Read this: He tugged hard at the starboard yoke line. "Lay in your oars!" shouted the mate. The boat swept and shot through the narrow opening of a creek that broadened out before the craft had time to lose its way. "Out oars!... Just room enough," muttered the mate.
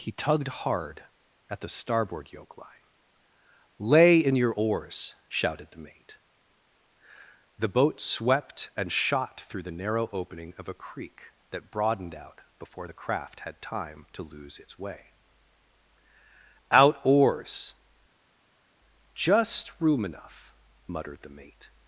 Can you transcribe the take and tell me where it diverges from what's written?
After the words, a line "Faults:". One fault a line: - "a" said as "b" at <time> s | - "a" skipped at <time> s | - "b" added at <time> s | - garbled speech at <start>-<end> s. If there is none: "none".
He tugged hard at the starboard yoke line. "Lay in your oars!" shouted the mate. The boat swept and shot through the narrow opening of a creek that broadened out before the craft had time to lose its way. "Out oars!... Just room enough," muttered the mate.
Faults:
none